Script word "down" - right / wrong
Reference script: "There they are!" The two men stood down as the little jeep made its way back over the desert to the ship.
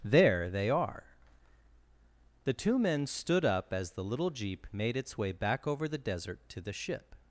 wrong